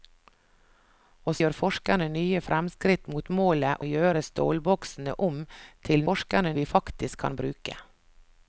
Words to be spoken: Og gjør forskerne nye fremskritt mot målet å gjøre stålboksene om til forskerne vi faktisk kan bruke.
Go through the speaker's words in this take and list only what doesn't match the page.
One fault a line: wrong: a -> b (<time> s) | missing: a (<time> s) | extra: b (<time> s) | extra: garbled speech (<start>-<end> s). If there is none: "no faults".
no faults